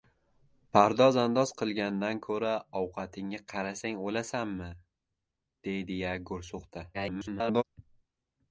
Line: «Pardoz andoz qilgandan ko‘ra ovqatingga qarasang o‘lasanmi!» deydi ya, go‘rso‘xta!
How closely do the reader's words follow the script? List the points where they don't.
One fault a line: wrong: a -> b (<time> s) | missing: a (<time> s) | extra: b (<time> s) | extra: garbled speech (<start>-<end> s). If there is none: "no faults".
extra: garbled speech (6.9-7.6 s)